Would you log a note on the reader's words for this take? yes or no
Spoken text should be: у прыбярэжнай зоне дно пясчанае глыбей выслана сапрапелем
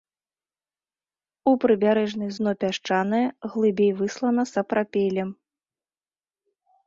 yes